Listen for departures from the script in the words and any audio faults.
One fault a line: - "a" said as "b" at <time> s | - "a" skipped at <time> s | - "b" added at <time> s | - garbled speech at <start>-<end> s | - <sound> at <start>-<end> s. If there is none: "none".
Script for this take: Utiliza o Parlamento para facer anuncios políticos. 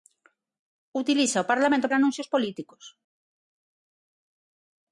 - "para facer" skipped at 1.9 s